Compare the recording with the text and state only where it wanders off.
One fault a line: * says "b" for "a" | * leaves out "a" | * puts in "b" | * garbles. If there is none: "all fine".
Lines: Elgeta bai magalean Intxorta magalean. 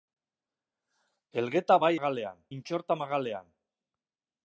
all fine